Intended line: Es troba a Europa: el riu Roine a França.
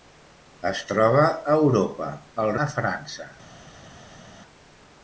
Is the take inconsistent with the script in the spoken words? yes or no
yes